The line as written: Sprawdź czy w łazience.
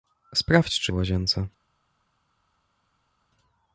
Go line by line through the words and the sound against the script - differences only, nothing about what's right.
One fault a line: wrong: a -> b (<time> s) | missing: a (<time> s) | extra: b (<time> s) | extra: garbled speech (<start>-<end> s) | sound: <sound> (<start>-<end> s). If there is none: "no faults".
no faults